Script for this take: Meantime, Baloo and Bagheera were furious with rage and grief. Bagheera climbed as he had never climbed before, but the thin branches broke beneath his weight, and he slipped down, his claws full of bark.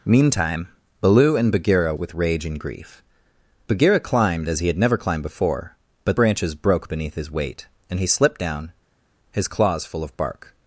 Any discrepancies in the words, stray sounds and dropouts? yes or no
yes